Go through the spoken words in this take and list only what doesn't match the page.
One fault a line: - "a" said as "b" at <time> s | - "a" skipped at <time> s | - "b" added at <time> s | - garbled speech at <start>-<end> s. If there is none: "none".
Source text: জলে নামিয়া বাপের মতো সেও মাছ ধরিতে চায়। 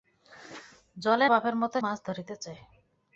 - "নামিয়া" skipped at 1.3 s
- "সেও" skipped at 1.8 s